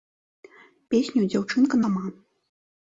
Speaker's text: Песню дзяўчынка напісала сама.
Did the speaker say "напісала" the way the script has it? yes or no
no